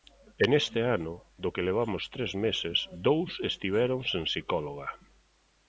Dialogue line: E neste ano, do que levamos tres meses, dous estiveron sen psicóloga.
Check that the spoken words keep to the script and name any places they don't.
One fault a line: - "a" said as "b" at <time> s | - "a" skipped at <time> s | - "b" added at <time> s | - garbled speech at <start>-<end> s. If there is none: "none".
none